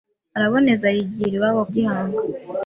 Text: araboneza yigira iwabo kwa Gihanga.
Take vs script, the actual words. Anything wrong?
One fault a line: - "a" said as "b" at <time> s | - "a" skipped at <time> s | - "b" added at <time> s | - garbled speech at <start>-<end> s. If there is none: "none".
- "kwa" skipped at 1.6 s